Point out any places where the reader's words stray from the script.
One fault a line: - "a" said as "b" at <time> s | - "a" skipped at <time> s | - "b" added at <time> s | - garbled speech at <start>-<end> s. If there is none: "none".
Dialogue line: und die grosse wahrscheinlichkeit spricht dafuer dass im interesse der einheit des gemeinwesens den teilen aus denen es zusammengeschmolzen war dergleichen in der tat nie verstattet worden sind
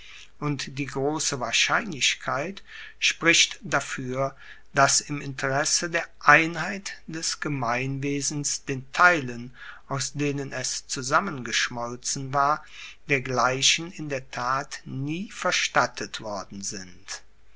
none